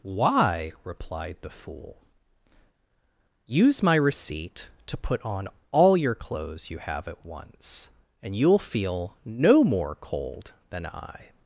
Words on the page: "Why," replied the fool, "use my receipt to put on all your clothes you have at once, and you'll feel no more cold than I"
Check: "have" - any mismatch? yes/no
no